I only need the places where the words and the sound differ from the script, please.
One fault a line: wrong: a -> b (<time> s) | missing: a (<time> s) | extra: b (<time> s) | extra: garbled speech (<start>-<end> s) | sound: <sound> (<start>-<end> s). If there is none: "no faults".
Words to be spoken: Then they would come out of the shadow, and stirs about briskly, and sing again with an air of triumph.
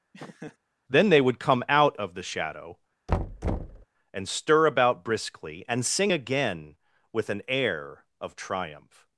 sound: laugh (0.1-0.6 s)
sound: thud (3.1-3.9 s)
wrong: stirs -> stir (4.3 s)